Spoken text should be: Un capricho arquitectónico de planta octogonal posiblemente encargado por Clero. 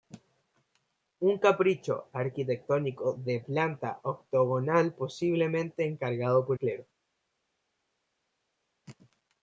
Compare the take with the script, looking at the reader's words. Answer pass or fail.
pass